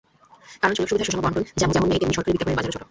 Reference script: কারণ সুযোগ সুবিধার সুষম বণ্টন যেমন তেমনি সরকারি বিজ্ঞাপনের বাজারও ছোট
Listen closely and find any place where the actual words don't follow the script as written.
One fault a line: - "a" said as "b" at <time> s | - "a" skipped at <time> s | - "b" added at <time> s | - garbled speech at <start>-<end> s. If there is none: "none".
none